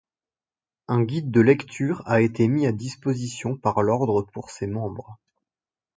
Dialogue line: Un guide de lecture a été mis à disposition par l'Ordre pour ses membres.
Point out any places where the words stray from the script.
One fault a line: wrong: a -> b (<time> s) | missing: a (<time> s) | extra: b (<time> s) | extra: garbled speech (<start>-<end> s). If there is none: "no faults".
no faults